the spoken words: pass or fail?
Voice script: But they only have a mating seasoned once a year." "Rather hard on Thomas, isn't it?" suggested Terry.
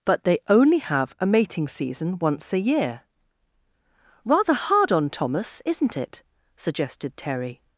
fail